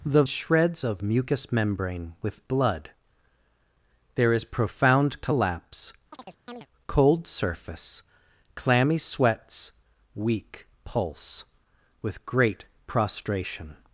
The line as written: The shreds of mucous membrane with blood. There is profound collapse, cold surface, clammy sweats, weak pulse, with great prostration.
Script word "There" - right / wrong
right